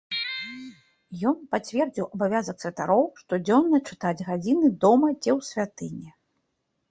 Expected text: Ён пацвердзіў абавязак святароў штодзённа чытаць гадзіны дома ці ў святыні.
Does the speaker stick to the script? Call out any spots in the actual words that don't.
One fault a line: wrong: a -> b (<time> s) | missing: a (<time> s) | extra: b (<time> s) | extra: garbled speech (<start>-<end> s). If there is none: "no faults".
no faults